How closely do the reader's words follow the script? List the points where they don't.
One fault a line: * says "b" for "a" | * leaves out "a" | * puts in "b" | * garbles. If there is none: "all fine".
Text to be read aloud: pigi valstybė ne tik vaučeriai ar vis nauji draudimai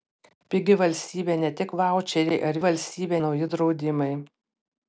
* says "valstybė" for "vis"